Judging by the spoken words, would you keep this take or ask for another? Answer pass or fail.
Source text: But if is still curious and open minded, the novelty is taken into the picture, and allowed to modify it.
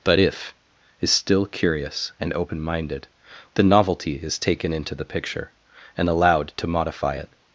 pass